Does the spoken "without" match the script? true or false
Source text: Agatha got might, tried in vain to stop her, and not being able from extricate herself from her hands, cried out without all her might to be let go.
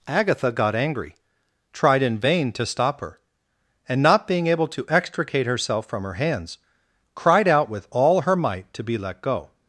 false